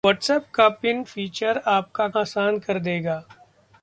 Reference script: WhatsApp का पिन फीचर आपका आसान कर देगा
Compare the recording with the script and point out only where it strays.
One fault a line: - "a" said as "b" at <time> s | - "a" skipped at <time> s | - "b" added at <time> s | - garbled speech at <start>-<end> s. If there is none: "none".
none